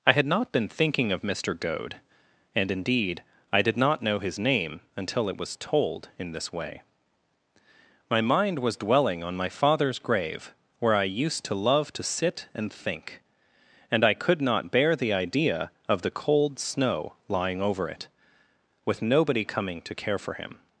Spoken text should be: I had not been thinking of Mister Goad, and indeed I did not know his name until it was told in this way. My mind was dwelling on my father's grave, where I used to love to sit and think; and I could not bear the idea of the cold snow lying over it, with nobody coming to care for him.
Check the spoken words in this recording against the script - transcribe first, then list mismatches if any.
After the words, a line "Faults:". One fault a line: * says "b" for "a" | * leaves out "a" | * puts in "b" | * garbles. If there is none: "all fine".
I had not been thinking of Mister Goad, and indeed I did not know his name until it was told in this way. My mind was dwelling on my father's grave, where I used to love to sit and think; and I could not bear the idea of the cold snow lying over it, with nobody coming to care for him.
Faults:
all fine